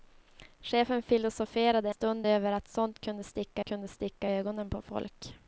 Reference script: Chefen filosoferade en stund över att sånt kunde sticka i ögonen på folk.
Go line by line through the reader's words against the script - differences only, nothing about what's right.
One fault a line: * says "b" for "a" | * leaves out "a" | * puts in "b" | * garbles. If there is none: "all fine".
* leaves out "en"
* puts in "kunde sticka"